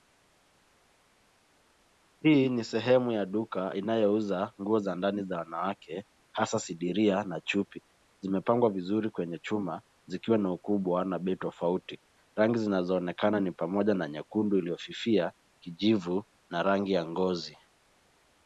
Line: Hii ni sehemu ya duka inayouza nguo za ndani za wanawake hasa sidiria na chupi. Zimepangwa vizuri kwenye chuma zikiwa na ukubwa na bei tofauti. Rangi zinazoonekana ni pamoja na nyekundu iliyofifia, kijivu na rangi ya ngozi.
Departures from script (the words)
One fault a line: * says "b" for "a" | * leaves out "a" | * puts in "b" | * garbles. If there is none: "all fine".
all fine